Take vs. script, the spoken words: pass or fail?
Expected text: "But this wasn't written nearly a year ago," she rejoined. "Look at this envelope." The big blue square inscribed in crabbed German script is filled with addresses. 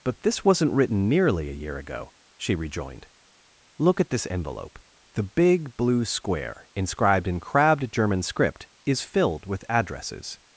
pass